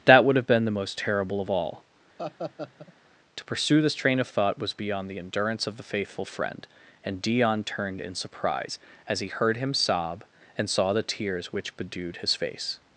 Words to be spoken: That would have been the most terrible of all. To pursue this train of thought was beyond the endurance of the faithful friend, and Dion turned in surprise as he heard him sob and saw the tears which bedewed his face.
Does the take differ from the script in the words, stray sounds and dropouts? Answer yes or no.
yes